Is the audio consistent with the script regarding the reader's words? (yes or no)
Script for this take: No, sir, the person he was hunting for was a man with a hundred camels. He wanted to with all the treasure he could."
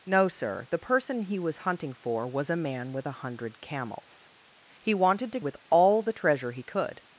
yes